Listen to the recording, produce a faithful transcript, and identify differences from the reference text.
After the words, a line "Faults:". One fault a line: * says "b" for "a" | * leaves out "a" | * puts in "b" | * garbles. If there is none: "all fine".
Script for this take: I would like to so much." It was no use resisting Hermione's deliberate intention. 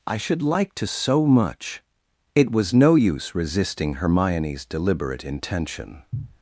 I should like to so much." It was no use resisting Hermione's deliberate intention.
Faults:
* says "should" for "would"